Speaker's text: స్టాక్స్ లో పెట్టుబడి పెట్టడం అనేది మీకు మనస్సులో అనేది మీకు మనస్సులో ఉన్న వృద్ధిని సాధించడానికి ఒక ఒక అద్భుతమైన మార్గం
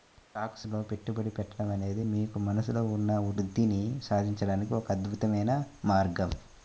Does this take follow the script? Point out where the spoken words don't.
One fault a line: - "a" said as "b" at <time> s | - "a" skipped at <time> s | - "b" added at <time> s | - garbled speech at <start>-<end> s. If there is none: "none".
- "అనేది మీకు మనస్సులో" skipped at 2.8 s
- "ఒక" skipped at 4.9 s